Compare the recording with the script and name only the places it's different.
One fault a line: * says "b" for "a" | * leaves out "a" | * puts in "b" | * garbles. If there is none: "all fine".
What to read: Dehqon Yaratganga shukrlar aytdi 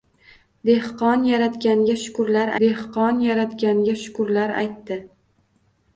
* puts in "dehqon Yaratganga shukrlar"